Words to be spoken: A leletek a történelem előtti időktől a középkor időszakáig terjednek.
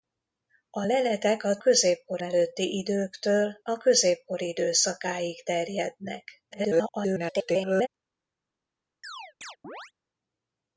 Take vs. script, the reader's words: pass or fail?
fail